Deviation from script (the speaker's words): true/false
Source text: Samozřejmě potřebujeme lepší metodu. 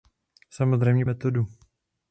true